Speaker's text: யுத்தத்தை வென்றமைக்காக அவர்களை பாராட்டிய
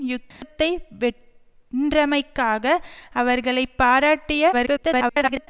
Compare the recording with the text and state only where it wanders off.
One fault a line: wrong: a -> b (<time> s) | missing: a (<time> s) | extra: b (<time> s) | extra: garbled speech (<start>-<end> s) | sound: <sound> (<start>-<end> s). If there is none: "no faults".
sound: dropout (0.3-0.4 s)
extra: garbled speech (4.5-5.5 s)